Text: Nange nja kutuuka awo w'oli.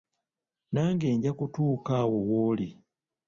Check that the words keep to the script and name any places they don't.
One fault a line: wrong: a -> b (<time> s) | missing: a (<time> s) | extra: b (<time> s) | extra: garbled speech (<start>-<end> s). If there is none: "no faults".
no faults